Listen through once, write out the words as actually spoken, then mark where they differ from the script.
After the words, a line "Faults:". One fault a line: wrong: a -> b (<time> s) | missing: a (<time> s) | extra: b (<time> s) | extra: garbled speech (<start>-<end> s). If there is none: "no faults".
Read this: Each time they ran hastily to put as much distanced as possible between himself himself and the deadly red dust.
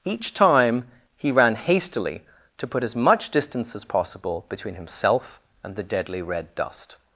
Each time he ran hastily to put as much distance as possible between himself and the deadly red dust.
Faults:
wrong: they -> he (1.2 s)
wrong: distanced -> distance (3.3 s)
missing: himself (5.4 s)